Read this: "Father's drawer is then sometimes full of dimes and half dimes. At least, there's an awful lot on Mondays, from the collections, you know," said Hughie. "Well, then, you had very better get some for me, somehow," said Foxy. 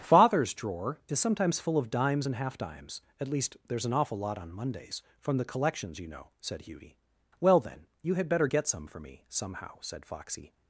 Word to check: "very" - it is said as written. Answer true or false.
false